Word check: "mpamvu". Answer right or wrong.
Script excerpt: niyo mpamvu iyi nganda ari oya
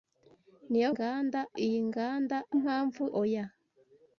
wrong